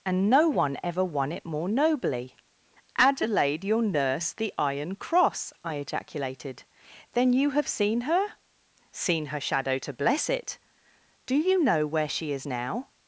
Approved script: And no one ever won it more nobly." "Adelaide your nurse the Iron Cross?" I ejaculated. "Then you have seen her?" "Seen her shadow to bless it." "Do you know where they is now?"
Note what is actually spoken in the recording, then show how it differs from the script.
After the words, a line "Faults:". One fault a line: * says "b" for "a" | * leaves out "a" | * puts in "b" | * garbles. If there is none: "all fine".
And no one ever won it more nobly." "Adelaide your nurse the Iron Cross?" I ejaculated. "Then you have seen her?" "Seen her shadow to bless it." "Do you know where she is now?"
Faults:
* says "she" for "they"